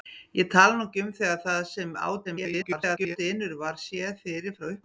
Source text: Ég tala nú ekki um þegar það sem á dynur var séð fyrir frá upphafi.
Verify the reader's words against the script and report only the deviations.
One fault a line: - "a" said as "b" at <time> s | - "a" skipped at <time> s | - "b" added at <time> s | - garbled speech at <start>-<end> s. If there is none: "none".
- garbled speech at 2.2-3.2 s